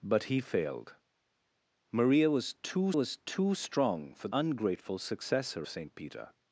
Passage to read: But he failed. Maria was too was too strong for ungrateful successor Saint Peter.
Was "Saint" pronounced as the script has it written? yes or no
yes